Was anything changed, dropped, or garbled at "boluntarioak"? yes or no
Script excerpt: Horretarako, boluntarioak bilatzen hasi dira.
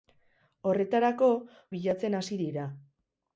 yes